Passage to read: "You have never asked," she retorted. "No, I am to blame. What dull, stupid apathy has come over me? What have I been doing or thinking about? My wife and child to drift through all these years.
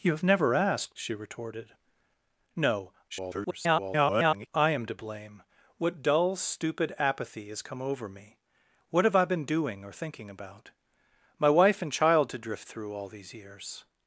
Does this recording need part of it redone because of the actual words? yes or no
yes